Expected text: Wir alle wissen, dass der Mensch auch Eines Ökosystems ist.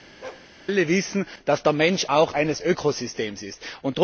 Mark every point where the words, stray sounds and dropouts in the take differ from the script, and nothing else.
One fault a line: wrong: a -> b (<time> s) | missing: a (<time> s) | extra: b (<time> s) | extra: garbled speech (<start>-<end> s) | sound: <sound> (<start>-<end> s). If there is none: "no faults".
sound: bark (0.2-0.5 s)